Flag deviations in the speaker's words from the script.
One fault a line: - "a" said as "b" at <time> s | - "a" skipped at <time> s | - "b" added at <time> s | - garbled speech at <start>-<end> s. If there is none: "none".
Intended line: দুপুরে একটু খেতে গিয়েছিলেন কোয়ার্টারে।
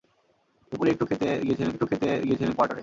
- "একটু খেতে গিয়েছিলেন" added at 1.7 s